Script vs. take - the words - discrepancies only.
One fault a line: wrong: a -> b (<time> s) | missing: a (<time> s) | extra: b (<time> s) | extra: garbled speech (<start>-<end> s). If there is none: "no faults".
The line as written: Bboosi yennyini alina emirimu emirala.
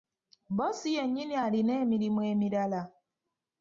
no faults